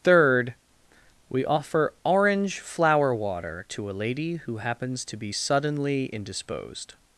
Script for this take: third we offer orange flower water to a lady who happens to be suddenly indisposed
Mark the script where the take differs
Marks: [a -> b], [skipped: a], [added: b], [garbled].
third we offer orange flower water to a lady who happens to be suddenly indisposed